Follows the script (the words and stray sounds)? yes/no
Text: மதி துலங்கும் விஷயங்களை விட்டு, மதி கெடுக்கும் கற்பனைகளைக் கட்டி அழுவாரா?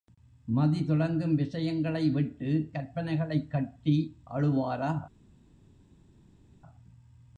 no